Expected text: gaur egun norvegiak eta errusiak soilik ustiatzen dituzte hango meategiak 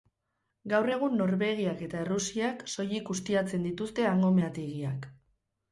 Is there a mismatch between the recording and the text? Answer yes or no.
no